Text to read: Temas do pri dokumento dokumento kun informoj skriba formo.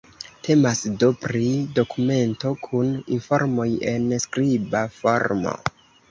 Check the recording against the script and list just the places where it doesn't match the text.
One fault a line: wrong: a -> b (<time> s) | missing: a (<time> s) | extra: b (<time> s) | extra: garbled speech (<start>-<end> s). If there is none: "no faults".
missing: dokumento (2.5 s)
extra: en (3.9 s)